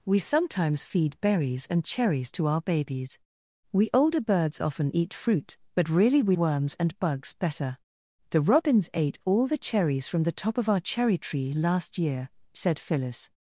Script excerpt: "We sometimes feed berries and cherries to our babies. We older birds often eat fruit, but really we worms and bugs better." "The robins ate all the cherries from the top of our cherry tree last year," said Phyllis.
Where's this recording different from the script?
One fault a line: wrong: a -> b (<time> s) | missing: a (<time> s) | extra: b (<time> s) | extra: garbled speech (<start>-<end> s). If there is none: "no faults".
no faults